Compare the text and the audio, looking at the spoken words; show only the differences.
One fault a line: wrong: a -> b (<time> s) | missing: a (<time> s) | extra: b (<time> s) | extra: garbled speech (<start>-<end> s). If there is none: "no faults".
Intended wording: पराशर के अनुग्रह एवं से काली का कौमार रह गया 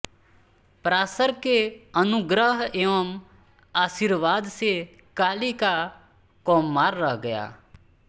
extra: आशीर्वाद (3.7 s)